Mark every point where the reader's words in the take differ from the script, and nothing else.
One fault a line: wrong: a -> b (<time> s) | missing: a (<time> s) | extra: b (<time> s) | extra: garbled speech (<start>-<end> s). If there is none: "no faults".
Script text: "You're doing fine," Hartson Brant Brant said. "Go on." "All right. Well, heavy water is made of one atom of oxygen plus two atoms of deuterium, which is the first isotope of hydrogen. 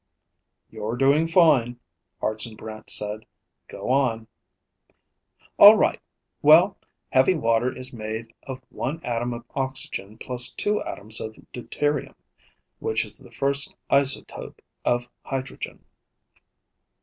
missing: Brant (2.9 s)